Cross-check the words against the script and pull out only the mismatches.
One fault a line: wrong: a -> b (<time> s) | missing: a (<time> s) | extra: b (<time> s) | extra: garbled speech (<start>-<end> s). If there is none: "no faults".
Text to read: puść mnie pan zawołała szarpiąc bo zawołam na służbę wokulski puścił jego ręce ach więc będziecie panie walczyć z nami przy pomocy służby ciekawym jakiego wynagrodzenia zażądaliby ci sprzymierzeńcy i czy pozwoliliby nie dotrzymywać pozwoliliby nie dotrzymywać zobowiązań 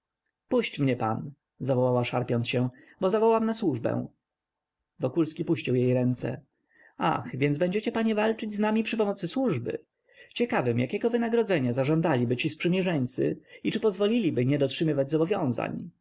extra: się (2.5 s)
wrong: jego -> jej (5.8 s)
missing: pozwoliliby nie dotrzymywać (15.1 s)